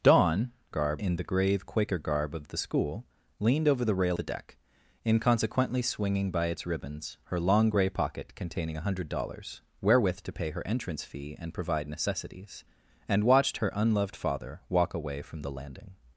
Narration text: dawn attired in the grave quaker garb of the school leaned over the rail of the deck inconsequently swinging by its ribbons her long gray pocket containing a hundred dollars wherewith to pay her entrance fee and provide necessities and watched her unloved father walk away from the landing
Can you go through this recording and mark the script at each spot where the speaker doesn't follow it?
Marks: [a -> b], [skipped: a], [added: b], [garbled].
dawn [attired -> garb] in the grave quaker garb of the school leaned over the rail [skipped: of] the deck inconsequently swinging by its ribbons her long gray pocket containing a hundred dollars wherewith to pay her entrance fee and provide necessities and watched her unloved father walk away from the landing